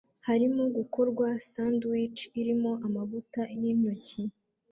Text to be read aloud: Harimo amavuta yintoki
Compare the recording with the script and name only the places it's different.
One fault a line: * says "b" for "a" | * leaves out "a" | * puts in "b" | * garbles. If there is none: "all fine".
* puts in "gukorwa sandwich irimo"